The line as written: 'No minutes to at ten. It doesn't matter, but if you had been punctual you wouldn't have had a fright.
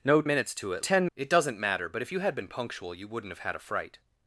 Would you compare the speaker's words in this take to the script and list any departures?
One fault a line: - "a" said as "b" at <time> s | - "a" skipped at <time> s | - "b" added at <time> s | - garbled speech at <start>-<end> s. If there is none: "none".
none